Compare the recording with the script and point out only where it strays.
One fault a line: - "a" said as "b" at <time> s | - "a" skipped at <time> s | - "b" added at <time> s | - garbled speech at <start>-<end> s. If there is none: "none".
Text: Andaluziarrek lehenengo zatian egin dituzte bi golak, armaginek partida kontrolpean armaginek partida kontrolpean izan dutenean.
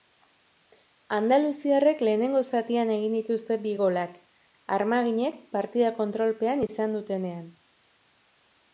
- "armaginek partida kontrolpean" skipped at 6.7 s